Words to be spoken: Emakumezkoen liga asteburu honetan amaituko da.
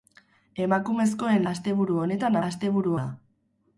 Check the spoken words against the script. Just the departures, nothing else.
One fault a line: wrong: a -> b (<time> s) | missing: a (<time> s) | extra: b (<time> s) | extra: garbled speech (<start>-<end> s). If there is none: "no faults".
missing: liga (1.4 s)
wrong: amaituko -> asteburu (2.5 s)